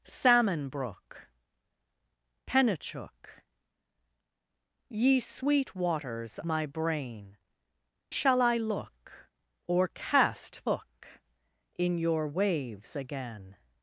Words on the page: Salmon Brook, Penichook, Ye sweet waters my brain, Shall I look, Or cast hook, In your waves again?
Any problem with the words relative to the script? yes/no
no